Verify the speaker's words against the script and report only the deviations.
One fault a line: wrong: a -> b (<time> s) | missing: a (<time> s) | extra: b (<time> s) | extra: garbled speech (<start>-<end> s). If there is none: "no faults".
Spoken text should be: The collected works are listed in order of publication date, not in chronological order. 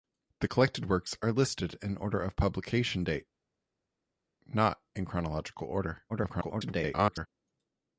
extra: garbled speech (6.1-7.3 s)